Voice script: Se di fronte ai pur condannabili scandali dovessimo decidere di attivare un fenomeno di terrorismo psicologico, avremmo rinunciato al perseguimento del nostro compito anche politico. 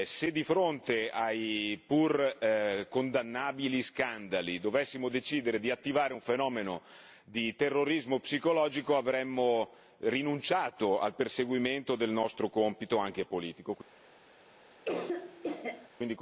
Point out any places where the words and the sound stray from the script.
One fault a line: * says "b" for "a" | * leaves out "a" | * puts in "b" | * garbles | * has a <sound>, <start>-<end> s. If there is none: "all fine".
* has a cough, 14.8-15.9 s